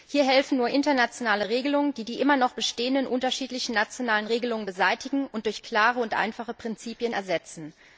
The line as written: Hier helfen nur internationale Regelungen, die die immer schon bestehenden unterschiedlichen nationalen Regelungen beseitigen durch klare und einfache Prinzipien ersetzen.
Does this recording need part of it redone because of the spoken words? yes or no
yes